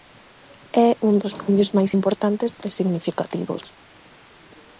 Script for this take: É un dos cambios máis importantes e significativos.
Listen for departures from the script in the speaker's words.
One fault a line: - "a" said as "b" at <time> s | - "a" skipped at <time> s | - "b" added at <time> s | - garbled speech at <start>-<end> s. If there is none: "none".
none